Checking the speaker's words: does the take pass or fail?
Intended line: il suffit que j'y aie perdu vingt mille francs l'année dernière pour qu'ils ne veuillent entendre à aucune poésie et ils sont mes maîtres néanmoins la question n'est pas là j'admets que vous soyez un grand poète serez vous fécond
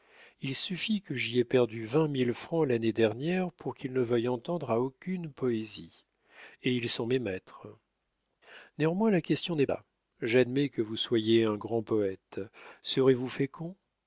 fail